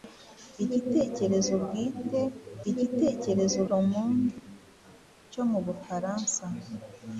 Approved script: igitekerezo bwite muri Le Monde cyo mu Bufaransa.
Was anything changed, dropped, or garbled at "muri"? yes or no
yes